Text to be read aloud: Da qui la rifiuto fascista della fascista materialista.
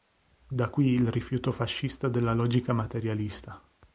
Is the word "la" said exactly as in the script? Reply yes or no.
no